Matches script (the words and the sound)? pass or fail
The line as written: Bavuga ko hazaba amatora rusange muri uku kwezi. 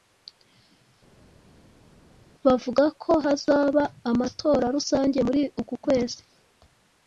pass